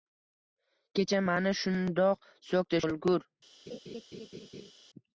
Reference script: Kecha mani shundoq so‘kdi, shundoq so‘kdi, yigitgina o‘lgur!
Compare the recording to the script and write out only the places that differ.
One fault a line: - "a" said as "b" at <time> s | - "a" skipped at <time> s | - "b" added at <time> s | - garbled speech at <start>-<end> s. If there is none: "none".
- "shundoq so‘kdi yigitgina" skipped at 2.8 s